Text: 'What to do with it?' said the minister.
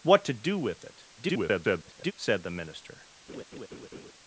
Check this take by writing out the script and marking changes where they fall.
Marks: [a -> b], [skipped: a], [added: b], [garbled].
'What to do with it?' [garbled] said the minister.